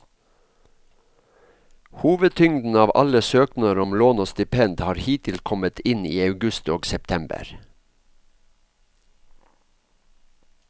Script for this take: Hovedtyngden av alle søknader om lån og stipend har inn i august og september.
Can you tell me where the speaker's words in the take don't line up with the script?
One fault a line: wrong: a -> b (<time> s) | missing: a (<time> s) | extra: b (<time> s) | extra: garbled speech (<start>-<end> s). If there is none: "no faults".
extra: hittil kommet (5.0 s)